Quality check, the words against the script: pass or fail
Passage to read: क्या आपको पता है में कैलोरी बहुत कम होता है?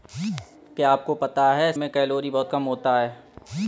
pass